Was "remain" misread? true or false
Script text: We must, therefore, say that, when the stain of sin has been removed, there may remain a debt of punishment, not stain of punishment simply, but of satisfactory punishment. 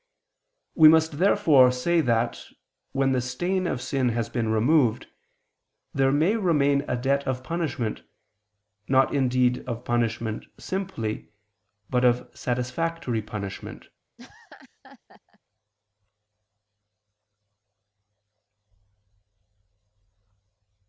false